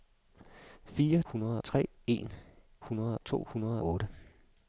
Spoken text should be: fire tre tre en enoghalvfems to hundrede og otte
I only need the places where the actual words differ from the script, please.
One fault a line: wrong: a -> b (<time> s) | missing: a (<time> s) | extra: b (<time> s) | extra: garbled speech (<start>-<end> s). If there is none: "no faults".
wrong: tre -> hundrede (1.3 s)
wrong: enoghalvfems -> hundrede (2.9 s)
missing: og (3.8 s)